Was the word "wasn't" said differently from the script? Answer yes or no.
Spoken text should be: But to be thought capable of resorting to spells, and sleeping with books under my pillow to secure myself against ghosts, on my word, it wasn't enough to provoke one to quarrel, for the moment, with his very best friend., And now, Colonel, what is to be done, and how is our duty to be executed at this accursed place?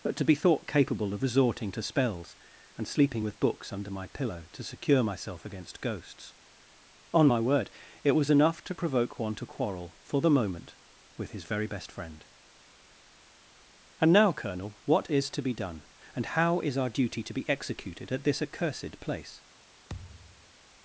yes